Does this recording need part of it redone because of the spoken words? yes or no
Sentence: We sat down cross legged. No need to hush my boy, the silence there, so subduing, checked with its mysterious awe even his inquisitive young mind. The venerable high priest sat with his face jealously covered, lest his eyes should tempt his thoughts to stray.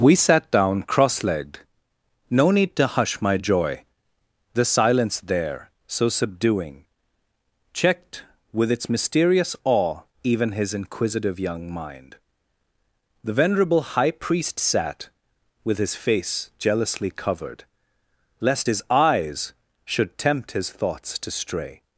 yes